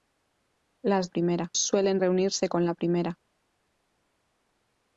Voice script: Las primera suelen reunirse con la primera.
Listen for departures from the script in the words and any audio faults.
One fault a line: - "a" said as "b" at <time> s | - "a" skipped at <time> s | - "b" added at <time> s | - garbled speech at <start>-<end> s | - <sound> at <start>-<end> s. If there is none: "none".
none